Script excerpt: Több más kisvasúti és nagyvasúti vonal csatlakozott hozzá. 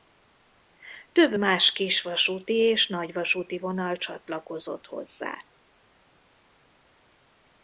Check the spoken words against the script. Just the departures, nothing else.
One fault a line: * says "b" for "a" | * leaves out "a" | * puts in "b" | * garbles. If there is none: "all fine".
all fine